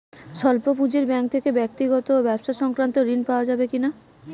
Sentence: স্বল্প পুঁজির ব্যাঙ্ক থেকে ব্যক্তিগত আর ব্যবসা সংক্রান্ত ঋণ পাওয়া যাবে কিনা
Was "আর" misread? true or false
true